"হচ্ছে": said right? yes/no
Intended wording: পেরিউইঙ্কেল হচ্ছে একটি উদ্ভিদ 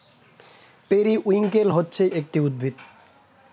yes